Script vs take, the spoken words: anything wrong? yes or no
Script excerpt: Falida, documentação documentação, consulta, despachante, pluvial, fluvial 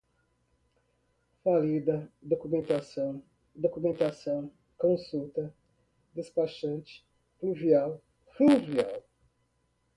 no